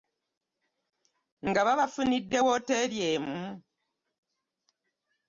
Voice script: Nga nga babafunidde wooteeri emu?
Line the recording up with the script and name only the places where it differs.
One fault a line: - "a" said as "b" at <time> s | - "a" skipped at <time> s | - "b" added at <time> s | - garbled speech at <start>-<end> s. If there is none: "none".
- "nga" skipped at 1.6 s